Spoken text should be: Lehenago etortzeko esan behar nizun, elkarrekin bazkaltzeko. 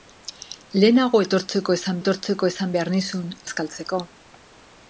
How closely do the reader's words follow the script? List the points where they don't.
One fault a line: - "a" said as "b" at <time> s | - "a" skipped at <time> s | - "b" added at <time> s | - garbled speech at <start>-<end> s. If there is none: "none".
- "etortzeko esan" added at 2.0 s
- "elkarrekin" skipped at 3.3 s